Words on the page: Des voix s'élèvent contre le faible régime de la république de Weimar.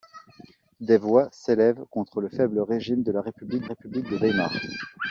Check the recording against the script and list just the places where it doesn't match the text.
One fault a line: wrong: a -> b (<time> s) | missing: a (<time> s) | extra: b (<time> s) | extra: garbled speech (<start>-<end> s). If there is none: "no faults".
extra: république (3.6 s)